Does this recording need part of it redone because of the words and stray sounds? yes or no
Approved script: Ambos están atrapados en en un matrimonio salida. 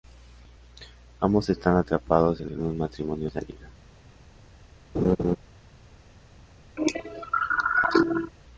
yes